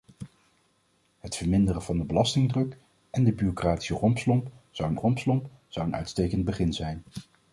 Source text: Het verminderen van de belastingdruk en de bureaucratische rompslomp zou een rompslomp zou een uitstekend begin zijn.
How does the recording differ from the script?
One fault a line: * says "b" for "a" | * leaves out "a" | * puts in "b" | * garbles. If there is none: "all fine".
all fine